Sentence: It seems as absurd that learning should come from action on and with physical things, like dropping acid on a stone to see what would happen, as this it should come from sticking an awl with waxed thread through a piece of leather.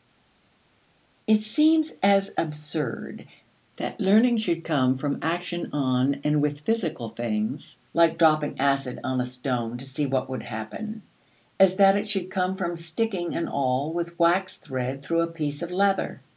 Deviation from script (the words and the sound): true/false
true